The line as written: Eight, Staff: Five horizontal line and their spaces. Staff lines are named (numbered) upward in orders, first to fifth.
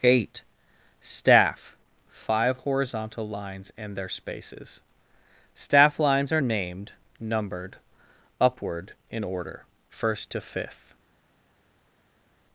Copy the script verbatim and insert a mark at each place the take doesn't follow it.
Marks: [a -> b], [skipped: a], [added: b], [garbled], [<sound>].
Eight, Staff: Five horizontal [line -> lines] and their spaces. Staff lines are named (numbered) upward in [orders, -> order] first to fifth.